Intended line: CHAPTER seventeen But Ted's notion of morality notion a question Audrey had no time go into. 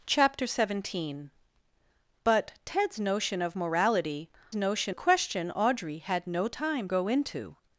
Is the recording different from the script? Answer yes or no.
no